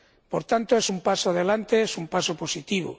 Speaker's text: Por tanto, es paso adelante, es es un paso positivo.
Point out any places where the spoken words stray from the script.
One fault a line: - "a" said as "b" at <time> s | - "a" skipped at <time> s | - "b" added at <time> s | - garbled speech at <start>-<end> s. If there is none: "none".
- "un" added at 0.9 s
- "es" skipped at 2.0 s